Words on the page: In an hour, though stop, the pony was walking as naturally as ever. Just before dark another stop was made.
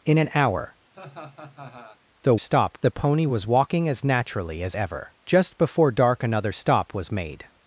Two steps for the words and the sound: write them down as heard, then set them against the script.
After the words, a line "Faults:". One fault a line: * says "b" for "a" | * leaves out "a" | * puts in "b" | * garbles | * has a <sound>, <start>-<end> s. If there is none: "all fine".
In an hour, though stop, the pony was walking as naturally as ever. Just before dark another stop was made.
Faults:
* has a laugh, 0.9-2.0 s